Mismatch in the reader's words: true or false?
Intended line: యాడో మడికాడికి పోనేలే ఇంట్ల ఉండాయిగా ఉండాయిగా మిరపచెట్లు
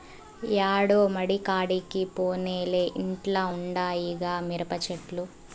true